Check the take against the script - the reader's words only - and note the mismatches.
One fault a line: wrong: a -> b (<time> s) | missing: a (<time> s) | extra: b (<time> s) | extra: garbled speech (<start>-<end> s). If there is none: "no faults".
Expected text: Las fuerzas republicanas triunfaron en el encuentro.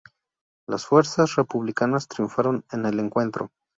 no faults